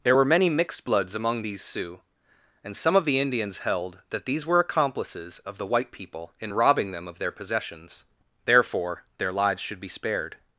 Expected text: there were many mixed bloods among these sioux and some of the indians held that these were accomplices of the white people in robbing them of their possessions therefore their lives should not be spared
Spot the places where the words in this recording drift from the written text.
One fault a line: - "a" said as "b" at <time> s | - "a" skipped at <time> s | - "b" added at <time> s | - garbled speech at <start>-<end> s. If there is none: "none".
- "not" skipped at 9.8 s